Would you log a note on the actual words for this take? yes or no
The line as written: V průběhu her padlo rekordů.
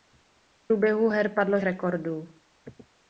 no